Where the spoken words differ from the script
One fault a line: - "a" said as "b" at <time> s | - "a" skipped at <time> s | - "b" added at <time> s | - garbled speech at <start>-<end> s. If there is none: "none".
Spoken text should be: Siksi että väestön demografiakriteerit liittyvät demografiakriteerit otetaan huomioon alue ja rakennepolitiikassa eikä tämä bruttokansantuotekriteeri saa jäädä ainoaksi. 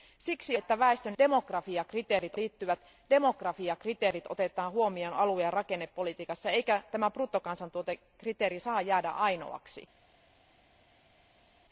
none